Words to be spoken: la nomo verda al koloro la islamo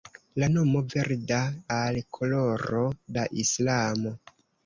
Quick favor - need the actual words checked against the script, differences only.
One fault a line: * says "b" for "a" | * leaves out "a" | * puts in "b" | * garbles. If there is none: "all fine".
all fine